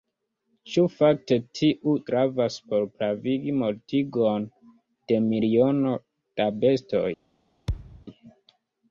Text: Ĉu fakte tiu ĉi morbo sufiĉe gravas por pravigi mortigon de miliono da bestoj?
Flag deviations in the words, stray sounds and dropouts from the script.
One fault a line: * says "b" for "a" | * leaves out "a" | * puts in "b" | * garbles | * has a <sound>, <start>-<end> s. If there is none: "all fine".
* leaves out "ĉi morbo sufiĉe"
* has a thud, 7.7-8.1 s